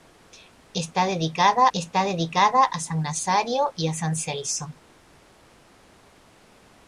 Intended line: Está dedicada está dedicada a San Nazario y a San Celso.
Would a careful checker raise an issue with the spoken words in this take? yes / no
no